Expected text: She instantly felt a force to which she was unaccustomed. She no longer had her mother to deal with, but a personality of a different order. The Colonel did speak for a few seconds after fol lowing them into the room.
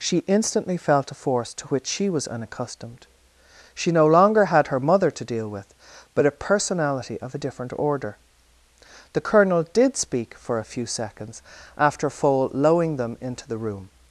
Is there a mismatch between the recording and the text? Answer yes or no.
no